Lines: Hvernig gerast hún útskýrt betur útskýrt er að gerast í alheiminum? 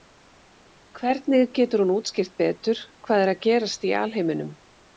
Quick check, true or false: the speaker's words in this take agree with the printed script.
false